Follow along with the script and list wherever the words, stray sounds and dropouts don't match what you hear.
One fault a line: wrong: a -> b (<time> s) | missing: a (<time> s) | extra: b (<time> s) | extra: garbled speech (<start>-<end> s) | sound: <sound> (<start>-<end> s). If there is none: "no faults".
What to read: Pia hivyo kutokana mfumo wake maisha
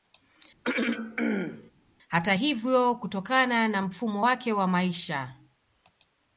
sound: throat clearing (0.6-1.7 s)
wrong: Pia -> Hata (2.1 s)
extra: na (3.7 s)
extra: wa (4.5 s)